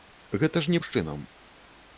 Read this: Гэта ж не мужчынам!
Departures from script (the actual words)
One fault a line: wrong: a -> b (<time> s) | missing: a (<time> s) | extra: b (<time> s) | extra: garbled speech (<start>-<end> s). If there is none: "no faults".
no faults